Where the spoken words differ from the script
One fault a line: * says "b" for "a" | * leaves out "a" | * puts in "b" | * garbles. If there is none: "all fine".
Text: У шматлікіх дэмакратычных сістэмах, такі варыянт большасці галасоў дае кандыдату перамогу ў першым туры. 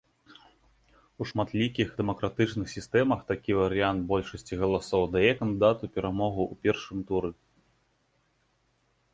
all fine